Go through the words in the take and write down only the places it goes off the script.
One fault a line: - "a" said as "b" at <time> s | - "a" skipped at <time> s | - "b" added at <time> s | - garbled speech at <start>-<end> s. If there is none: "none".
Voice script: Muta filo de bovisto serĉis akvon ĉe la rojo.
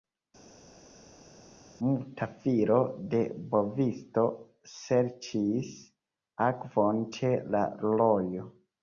none